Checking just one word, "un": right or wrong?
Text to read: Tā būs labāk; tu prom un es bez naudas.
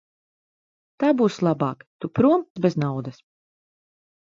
wrong